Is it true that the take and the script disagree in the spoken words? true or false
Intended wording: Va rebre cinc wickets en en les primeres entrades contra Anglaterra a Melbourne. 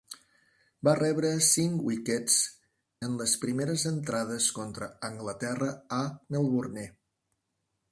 true